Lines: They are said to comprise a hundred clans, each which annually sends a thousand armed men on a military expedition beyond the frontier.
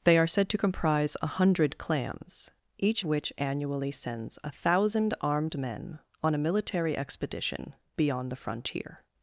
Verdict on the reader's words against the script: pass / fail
pass